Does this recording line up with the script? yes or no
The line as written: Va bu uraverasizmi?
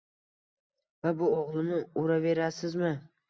no